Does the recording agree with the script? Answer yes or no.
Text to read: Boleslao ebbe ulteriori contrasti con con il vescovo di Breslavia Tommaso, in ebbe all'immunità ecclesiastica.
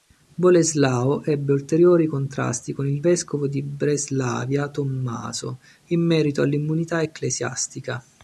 no